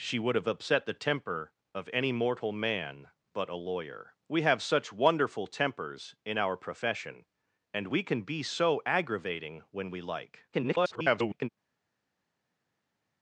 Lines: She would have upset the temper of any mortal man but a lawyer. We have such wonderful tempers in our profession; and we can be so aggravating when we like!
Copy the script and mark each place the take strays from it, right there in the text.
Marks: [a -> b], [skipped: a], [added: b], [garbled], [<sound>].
She would have upset the temper of any mortal man but a lawyer. We have such wonderful tempers in our profession; and we can be so aggravating when we like! [garbled]